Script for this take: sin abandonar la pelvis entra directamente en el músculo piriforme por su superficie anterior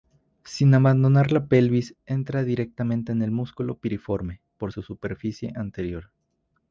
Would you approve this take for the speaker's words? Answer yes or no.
yes